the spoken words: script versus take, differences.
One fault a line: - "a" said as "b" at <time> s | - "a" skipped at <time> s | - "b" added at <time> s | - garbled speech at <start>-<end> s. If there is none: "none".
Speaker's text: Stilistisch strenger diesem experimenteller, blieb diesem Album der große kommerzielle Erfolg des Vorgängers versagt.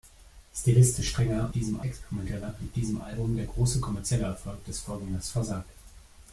none